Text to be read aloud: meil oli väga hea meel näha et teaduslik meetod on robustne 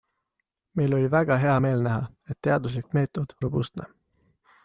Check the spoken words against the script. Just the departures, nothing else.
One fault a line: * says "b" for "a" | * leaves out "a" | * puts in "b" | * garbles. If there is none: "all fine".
* leaves out "on"